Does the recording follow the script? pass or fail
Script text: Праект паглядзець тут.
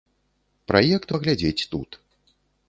pass